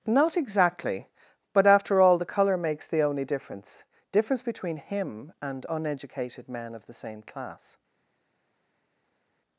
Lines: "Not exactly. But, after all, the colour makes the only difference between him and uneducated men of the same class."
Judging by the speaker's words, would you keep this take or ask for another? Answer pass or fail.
fail